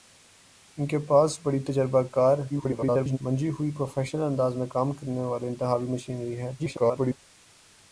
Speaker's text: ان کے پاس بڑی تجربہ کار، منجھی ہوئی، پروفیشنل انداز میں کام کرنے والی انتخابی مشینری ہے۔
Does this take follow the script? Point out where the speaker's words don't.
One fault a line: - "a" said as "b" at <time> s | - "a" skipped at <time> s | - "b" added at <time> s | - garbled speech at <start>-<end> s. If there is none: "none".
- garbled speech at 2.5-3.2 s
- garbled speech at 6.6-7.2 s